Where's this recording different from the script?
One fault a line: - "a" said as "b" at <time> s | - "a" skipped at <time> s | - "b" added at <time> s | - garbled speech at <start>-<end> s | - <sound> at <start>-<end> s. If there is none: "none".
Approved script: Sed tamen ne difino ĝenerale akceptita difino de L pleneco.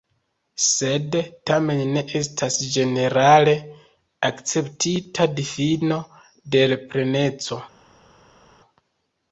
- "difino" said as "estas" at 2.2 s